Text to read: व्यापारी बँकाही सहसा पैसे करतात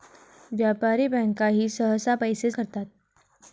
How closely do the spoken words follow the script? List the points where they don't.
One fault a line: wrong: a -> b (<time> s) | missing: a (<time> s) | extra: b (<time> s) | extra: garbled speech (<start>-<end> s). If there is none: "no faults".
no faults